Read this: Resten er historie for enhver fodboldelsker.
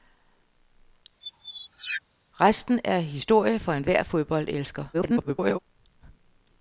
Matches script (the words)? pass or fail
fail